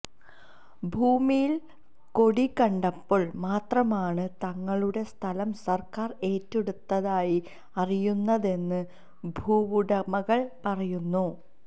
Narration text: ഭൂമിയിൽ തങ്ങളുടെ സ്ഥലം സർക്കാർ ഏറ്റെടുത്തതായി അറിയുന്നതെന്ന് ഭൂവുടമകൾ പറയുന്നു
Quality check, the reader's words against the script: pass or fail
fail